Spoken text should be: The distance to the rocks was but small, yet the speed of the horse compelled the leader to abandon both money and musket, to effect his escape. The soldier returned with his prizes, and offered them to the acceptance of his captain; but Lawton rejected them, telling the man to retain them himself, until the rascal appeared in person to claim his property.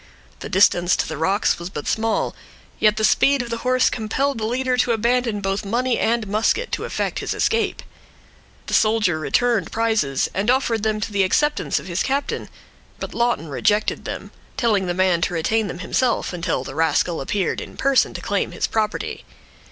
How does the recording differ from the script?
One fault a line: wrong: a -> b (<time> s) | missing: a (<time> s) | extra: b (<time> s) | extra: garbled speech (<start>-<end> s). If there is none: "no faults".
missing: with his (9.7 s)